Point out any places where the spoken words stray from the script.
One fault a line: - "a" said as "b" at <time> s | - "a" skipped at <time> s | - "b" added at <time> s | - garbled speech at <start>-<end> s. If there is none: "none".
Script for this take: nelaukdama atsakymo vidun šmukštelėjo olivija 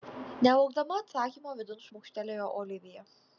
none